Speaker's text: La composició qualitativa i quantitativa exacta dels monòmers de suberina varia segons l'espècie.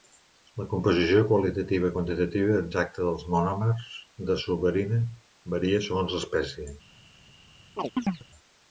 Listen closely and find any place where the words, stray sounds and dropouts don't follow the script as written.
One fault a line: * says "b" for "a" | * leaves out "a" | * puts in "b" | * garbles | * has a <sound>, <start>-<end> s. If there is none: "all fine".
* has a chirp, 7.8-8.2 s